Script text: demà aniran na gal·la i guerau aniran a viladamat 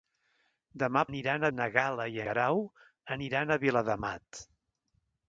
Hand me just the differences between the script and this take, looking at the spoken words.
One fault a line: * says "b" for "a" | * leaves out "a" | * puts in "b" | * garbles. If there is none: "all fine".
all fine